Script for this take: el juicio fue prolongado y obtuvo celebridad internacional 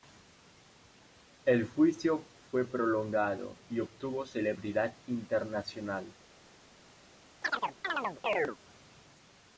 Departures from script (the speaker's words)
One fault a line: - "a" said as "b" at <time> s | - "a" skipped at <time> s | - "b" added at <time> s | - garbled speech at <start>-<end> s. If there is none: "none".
none